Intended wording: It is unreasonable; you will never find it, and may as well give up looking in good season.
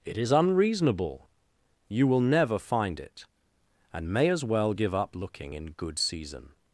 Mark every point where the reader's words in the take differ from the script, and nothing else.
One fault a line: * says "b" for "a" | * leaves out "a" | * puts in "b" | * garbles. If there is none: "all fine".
all fine